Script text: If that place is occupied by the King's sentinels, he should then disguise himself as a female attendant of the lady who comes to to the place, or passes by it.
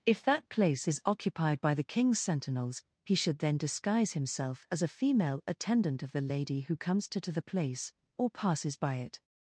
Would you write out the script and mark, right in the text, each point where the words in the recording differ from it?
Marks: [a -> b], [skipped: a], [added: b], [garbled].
If that place is occupied by the King's sentinels, he should then disguise himself as a female attendant of the lady who comes to to the place, or passes by it.